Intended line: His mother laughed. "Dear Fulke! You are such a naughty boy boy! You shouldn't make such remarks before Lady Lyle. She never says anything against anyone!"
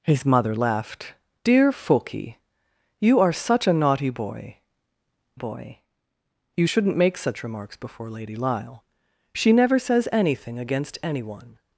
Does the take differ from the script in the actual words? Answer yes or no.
no